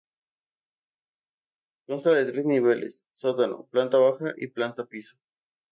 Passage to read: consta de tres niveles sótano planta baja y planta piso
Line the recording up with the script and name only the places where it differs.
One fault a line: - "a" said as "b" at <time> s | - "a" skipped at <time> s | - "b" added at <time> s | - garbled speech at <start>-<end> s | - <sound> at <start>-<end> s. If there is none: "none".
none